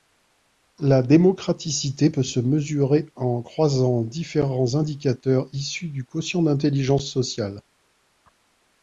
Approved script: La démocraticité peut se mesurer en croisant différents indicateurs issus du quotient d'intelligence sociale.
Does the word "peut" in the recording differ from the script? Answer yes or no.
no